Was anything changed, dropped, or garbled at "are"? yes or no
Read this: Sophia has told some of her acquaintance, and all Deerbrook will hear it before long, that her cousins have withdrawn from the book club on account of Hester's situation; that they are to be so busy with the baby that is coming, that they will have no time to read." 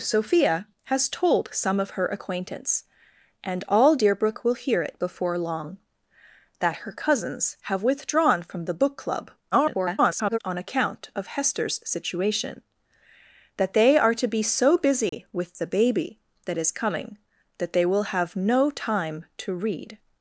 no